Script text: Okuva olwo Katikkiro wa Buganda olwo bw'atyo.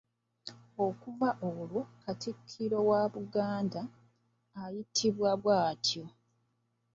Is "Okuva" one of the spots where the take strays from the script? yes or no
no